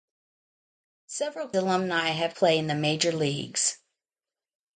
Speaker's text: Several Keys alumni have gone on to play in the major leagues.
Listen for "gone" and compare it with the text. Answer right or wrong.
wrong